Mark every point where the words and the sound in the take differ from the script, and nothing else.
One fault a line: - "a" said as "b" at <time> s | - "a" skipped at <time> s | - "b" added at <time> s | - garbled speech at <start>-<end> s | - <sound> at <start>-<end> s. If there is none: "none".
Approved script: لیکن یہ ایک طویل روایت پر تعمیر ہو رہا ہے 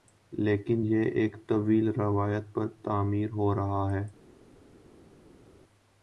none